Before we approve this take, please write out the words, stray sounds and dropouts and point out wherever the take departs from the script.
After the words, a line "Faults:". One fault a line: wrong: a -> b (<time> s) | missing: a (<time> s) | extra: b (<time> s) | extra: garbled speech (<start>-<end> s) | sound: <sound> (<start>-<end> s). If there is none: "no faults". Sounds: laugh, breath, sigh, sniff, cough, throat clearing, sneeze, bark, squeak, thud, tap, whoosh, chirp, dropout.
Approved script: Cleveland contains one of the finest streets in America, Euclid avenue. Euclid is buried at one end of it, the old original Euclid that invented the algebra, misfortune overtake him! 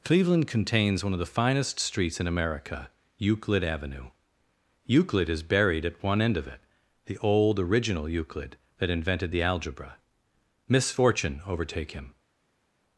Cleveland contains one of the finest streets in America, Euclid avenue. Euclid is buried at one end of it, the old original Euclid that invented the algebra, misfortune overtake him!
Faults:
no faults